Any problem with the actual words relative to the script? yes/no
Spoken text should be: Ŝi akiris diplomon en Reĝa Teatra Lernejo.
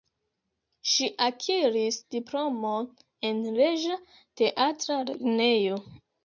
no